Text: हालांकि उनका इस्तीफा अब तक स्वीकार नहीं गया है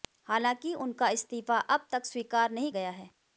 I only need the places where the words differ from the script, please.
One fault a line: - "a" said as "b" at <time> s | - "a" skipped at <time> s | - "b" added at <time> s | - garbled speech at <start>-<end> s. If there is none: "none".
none